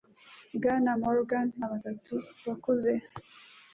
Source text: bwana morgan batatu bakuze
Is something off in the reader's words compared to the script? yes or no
no